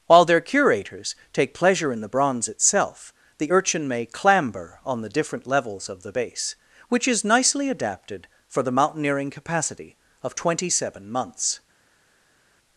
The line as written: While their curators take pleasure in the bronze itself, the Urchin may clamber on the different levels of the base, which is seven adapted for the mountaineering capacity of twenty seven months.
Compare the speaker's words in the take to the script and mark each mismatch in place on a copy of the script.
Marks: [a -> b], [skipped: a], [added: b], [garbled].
While their curators take pleasure in the bronze itself, the Urchin may clamber on the different levels of the base, which is [seven -> nicely] adapted for the mountaineering capacity of twenty seven months.